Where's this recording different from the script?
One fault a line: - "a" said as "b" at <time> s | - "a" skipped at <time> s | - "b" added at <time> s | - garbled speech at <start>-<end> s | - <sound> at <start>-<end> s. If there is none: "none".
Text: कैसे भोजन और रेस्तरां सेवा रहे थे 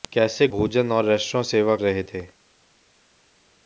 none